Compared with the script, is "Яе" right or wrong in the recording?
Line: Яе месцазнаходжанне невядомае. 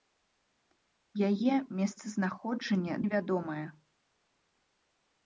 right